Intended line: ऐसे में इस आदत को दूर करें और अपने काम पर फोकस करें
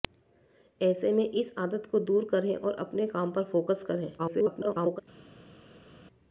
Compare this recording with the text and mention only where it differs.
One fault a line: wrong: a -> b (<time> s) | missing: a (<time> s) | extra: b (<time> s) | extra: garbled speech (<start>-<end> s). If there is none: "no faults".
extra: garbled speech (4.2-5.0 s)